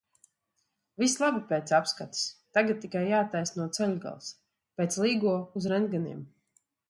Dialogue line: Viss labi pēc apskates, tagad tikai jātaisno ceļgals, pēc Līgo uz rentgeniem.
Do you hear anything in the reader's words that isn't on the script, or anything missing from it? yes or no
no